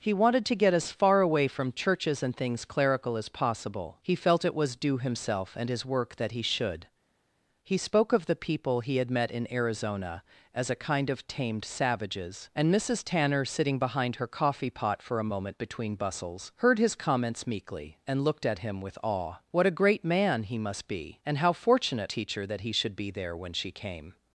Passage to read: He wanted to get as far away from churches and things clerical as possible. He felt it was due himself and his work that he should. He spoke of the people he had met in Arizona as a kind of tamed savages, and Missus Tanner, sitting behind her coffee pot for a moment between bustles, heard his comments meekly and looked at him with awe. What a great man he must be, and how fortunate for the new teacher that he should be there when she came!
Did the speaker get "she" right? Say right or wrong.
right